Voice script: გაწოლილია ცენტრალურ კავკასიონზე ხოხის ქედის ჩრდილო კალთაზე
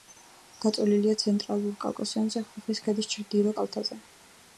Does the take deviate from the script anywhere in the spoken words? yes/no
no